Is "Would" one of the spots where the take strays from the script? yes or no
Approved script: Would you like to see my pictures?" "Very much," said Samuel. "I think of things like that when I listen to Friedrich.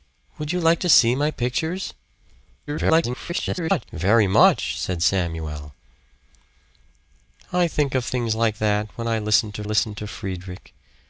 no